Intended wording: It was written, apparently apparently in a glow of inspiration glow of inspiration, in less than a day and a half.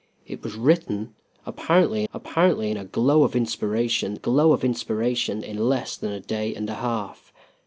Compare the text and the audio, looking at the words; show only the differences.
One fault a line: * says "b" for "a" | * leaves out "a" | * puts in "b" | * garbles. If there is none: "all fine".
all fine